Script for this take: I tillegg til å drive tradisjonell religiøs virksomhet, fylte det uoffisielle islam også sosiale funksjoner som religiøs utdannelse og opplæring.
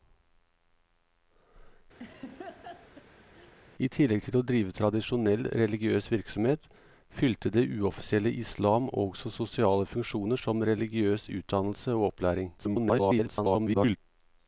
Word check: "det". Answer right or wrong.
right